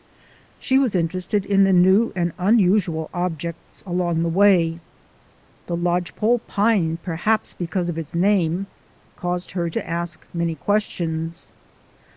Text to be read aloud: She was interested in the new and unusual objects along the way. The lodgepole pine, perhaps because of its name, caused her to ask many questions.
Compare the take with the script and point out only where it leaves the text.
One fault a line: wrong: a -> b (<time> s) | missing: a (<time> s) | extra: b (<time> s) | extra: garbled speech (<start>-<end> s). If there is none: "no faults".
no faults